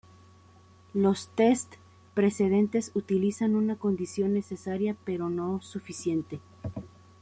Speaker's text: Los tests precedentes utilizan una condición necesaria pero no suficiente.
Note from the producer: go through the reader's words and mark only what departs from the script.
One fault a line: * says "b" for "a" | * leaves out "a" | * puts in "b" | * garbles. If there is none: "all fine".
all fine